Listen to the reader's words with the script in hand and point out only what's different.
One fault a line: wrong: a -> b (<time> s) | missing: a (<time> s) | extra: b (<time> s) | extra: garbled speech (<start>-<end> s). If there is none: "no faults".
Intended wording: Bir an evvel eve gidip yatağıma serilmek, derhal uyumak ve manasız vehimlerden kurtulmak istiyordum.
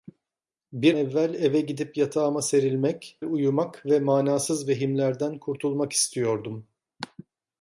missing: an (0.9 s)
missing: derhal (3.2 s)